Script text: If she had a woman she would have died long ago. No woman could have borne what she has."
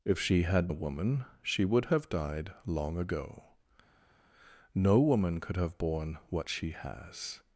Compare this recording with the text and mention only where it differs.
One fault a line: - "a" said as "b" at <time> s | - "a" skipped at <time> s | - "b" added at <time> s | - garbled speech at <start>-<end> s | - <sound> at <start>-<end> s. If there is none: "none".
none